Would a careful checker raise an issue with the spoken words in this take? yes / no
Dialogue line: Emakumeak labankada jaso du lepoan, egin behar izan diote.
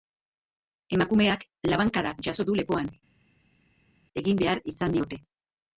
no